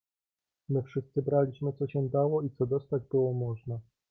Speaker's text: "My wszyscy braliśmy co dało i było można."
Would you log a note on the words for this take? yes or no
yes